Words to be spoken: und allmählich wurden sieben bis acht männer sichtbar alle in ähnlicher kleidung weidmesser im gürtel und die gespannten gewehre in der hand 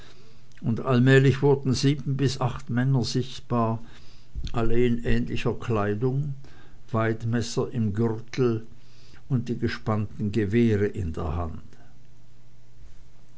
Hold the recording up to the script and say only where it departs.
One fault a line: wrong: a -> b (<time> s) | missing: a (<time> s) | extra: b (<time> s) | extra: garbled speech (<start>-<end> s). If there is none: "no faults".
no faults